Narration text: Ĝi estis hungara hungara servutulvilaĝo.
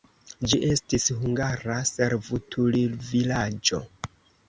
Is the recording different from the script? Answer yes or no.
yes